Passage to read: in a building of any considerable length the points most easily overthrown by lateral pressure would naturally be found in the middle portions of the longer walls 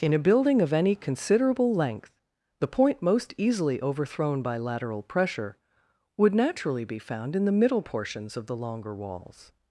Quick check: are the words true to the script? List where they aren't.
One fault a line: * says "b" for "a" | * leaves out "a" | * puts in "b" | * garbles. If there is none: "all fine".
* says "point" for "points"